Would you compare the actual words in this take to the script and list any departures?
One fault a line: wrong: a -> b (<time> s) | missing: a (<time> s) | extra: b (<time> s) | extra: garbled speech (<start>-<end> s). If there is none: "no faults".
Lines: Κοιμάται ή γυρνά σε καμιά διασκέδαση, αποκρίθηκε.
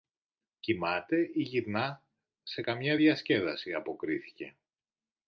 no faults